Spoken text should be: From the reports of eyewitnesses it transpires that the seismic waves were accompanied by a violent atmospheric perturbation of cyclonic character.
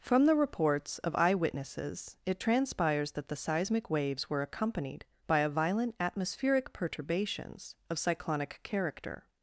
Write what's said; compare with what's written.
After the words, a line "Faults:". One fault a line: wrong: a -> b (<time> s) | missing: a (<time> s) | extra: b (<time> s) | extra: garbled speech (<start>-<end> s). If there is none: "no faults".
From the reports of eyewitnesses it transpires that the seismic waves were accompanied by a violent atmospheric perturbations of cyclonic character.
Faults:
wrong: perturbation -> perturbations (6.7 s)